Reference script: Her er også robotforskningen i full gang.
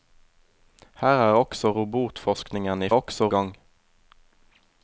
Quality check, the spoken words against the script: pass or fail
fail